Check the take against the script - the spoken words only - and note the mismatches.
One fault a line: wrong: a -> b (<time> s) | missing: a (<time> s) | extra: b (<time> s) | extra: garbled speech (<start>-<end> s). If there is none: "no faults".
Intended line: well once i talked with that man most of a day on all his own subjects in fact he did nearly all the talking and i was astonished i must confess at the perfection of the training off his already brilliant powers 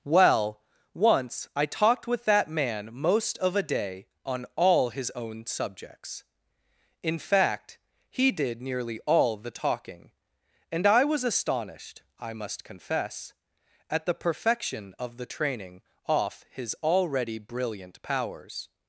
no faults